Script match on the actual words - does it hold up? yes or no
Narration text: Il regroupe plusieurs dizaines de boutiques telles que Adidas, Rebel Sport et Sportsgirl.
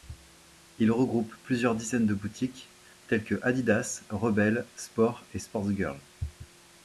yes